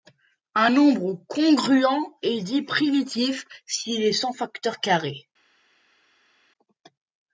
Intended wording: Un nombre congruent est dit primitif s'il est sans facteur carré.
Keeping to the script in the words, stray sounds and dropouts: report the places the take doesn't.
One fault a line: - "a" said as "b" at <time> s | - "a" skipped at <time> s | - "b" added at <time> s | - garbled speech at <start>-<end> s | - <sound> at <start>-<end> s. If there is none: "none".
none